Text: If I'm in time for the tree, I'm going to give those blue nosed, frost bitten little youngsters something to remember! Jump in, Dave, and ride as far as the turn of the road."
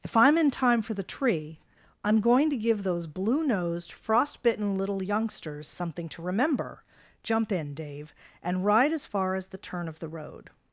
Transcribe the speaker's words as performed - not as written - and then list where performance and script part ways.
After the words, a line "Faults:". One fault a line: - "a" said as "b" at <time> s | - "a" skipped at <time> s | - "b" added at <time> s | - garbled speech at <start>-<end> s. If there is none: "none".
If I'm in time for the tree, I'm going to give those blue nosed, frost bitten little youngsters something to remember! Jump in, Dave, and ride as far as the turn of the road."
Faults:
none